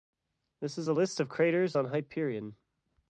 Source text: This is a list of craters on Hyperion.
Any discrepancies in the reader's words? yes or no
no